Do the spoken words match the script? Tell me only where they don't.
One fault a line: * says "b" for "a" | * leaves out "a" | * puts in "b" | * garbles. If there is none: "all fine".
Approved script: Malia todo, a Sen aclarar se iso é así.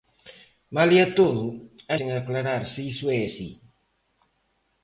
all fine